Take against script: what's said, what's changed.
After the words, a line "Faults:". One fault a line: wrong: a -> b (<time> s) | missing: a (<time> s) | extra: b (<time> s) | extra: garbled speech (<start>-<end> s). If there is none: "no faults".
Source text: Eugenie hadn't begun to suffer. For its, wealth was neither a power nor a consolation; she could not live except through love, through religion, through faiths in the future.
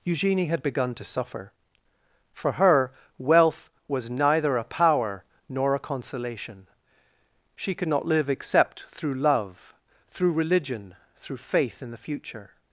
Eugenie had begun to suffer. For her, wealth was neither a power nor a consolation; she could not live except through love, through religion, through faith in the future.
Faults:
wrong: hadn't -> had (0.5 s)
wrong: its -> her (2.5 s)
wrong: faiths -> faith (11.4 s)